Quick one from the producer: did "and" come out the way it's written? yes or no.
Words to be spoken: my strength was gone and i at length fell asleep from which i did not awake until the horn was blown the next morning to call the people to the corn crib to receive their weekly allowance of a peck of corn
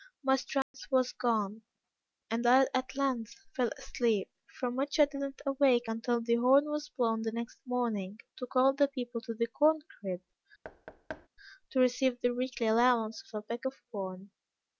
yes